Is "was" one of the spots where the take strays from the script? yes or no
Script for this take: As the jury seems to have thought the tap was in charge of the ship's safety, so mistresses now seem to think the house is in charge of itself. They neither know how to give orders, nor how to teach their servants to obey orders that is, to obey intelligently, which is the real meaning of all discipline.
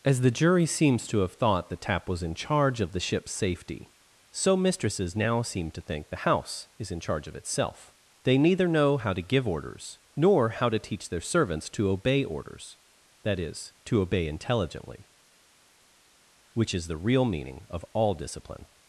no